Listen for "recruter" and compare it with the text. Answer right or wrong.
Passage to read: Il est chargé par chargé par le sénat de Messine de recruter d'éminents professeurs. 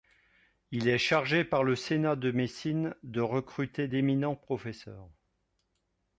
right